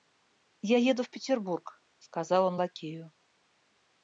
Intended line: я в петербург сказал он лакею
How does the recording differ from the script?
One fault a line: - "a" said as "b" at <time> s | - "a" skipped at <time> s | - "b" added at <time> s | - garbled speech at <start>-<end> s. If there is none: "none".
- "еду" added at 0.8 s